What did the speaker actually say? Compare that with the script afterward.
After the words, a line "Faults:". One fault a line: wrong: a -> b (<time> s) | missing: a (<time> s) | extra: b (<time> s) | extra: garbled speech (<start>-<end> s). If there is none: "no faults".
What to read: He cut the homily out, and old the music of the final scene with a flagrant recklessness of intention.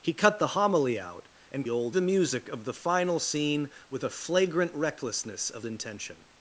He cut the homily out, and old the music of the final scene with a flagrant recklessness of intention.
Faults:
no faults